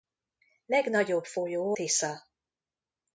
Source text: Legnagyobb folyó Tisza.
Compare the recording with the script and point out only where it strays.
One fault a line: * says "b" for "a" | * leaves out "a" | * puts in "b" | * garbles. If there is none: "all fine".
all fine